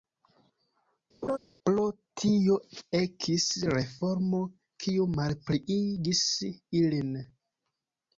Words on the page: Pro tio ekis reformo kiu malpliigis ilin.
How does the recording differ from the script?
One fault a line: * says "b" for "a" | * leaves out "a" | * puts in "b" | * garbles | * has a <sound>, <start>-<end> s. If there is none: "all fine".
* has a laugh, 1.2-1.4 s